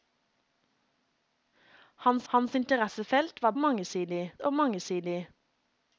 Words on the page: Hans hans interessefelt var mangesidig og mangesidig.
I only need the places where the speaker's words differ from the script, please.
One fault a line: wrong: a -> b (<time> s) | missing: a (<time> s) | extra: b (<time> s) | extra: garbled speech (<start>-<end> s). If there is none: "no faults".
no faults